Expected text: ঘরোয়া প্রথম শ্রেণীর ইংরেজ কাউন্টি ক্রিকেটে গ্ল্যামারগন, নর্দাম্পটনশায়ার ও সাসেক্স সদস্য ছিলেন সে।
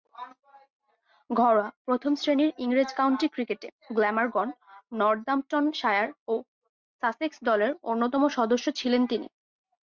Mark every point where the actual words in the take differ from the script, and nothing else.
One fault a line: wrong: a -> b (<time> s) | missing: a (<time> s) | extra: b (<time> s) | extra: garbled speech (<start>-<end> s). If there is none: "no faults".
extra: দলের অন্যতম (7.4 s)
wrong: সে -> তিনি (9.1 s)